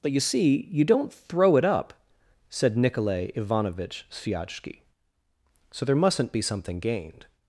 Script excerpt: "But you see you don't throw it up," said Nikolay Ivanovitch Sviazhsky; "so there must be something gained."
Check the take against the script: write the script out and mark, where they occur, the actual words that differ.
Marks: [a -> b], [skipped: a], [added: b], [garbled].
"But you see you don't throw it up," said Nikolay Ivanovitch Sviazhsky; "so there [must -> mustn't] be something gained."